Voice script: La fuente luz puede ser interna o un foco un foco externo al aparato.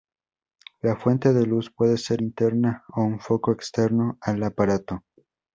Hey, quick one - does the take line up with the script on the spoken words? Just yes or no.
no